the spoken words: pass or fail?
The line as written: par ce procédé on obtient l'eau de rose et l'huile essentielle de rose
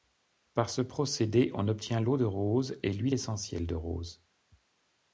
pass